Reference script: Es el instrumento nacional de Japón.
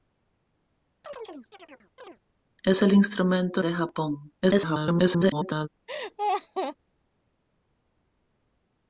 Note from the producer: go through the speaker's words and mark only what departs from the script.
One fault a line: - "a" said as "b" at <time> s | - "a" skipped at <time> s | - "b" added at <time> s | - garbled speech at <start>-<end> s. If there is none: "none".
- "nacional" skipped at 3.6 s
- garbled speech at 4.4-5.7 s